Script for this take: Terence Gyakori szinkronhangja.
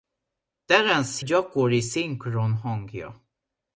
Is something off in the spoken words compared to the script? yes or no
no